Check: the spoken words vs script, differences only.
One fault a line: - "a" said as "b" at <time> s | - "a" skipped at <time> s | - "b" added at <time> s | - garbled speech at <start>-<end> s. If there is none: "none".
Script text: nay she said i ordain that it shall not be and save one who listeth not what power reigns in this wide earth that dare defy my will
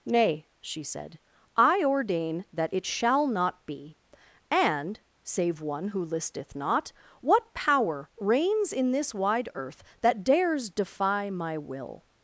- "dare" said as "dares" at 10.2 s